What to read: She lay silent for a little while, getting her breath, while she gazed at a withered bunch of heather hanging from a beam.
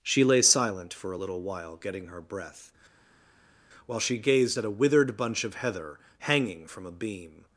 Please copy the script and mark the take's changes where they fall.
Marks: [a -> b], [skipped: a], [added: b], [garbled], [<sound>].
She lay silent for a little while, getting her breath, while she gazed at a withered bunch of heather hanging from a beam.